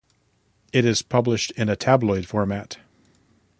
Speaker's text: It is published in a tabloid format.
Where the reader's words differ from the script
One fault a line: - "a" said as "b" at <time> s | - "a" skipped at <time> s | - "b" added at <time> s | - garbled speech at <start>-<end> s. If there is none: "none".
none